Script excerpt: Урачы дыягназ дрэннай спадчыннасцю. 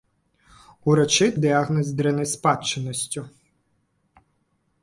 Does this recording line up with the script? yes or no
yes